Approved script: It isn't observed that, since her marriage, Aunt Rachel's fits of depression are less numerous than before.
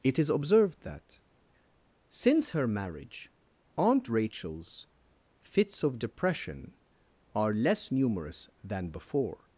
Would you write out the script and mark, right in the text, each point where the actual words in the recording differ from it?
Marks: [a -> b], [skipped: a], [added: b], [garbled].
It [isn't -> is] observed that, since her marriage, Aunt Rachel's fits of depression are less numerous than before.